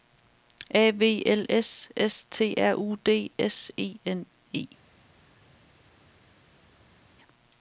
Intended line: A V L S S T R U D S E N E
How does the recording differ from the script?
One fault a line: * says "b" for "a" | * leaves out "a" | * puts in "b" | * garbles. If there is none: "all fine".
all fine